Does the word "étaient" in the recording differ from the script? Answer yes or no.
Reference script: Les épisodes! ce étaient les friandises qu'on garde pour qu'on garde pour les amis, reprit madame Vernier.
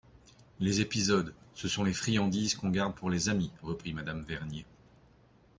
yes